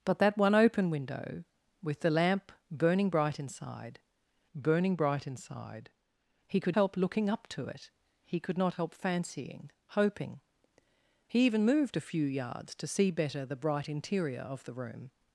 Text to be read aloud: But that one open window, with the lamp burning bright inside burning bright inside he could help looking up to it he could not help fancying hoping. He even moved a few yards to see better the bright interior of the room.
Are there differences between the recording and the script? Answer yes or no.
no